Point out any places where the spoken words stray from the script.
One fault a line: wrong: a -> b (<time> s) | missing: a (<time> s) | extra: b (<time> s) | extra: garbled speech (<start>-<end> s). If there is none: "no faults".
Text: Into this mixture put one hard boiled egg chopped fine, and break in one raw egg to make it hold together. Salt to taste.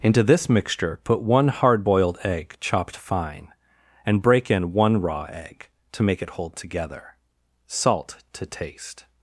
no faults